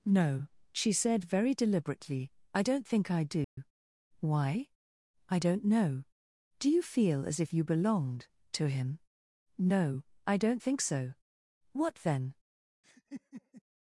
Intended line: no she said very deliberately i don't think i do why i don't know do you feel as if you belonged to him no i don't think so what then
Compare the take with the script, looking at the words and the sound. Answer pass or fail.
fail